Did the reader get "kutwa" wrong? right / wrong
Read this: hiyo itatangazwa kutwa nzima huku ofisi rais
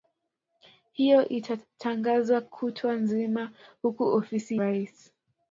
right